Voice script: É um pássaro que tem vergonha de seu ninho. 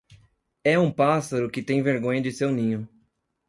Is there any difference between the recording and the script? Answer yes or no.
no